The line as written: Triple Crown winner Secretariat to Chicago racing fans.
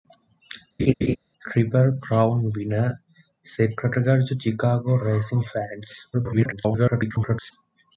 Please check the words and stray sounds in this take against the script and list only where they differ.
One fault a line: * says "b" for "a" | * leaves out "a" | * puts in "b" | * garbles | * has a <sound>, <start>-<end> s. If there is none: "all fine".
* has a laugh, 0.8-1.2 s
* garbles